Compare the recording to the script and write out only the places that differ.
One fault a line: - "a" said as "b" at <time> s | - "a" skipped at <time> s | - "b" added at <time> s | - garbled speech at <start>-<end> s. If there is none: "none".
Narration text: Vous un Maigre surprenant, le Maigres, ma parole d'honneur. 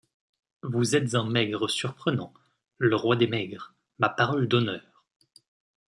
- "êtes" added at 0.9 s
- "roi des" added at 3.0 s